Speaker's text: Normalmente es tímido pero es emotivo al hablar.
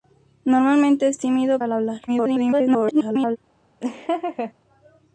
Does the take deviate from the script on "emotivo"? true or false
true